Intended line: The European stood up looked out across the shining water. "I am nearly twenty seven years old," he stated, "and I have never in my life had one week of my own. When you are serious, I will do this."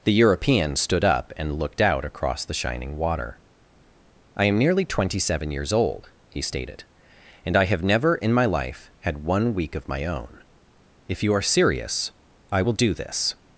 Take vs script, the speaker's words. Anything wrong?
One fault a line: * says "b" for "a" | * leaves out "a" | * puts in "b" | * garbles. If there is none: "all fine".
* puts in "and"
* says "If" for "When"